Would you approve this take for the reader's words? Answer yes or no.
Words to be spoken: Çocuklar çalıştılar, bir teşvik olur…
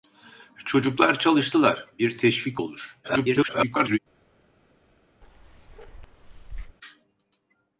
no